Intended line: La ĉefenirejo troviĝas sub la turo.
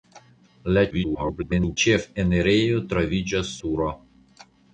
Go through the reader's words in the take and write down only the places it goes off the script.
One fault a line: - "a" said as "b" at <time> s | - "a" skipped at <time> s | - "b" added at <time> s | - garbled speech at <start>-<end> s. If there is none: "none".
- garbled speech at 0.9-1.8 s
- "sub la" skipped at 3.5 s